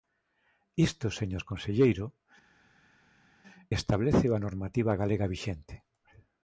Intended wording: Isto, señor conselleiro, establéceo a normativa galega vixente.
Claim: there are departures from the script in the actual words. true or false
false